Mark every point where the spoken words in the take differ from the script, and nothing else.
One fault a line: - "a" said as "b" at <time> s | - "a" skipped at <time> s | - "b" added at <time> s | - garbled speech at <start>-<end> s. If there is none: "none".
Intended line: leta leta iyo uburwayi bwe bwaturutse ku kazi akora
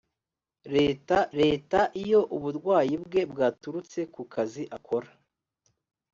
none